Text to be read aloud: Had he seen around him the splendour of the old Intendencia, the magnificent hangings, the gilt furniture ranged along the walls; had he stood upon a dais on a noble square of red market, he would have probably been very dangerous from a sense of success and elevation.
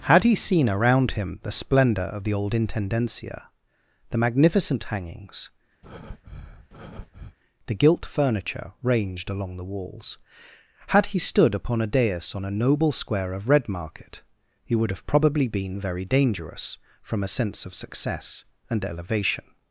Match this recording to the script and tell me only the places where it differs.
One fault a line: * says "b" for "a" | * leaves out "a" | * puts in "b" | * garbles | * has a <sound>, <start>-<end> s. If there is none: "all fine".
* has a breath, 5.8-7.4 s